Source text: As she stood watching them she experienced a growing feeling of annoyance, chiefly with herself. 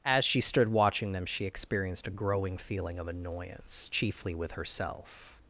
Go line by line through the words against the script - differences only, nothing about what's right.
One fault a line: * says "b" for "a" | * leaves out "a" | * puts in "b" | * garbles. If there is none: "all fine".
all fine